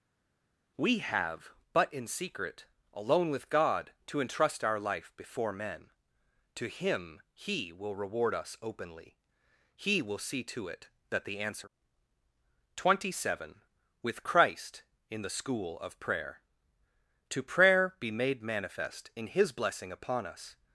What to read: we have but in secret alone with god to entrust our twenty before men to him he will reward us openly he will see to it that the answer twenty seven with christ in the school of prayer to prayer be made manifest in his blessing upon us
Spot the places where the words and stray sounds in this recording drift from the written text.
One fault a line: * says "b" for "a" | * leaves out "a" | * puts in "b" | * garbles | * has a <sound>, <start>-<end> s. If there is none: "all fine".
* says "life" for "twenty"